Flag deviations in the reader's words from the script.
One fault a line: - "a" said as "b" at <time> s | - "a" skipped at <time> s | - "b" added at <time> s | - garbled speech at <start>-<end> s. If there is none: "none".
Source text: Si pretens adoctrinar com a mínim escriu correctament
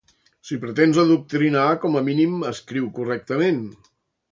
none